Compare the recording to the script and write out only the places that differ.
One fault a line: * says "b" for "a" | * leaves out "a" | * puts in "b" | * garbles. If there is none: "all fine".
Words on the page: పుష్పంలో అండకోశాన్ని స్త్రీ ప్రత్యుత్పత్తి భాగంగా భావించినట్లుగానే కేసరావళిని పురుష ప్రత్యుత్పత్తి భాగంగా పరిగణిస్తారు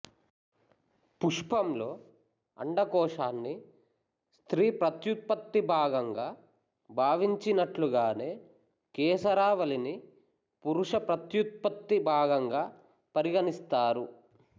all fine